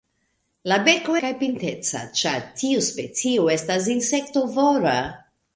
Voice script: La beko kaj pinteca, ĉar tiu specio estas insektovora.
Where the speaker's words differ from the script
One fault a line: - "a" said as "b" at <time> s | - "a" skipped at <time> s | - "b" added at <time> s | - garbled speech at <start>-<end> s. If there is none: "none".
none